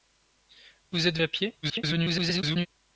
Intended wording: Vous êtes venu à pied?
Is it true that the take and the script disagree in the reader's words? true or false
true